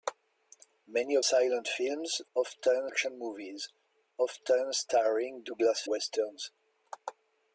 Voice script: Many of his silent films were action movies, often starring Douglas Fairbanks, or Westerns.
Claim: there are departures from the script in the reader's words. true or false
true